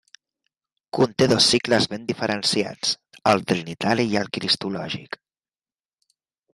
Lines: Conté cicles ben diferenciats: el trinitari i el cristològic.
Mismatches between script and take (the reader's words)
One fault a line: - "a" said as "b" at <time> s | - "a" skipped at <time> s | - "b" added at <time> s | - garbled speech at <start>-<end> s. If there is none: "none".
- "dos" added at 1.3 s